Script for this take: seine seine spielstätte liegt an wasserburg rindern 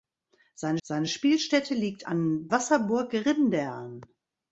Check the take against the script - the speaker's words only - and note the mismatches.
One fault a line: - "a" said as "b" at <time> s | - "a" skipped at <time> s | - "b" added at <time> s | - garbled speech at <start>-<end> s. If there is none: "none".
none